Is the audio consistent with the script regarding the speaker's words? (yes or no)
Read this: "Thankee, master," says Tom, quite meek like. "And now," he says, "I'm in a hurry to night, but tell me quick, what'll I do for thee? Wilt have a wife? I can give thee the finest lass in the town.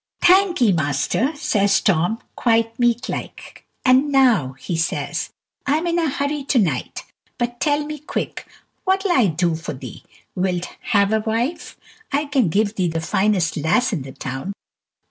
yes